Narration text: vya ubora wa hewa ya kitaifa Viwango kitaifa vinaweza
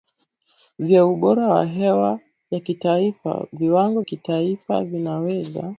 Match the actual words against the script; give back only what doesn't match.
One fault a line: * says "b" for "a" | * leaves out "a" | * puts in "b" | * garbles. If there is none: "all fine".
all fine